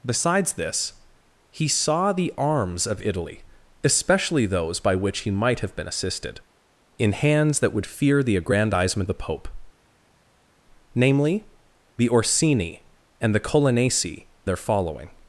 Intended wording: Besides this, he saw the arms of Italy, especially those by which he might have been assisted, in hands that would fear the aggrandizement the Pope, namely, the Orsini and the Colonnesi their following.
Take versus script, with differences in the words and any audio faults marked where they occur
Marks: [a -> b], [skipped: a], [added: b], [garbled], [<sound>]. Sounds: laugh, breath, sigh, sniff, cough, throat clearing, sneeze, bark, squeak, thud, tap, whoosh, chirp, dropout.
Besides this, he saw the arms of Italy, especially those by which he might have been assisted, in hands that would fear the aggrandizement the Pope, namely, the Orsini and the Colonnesi their following.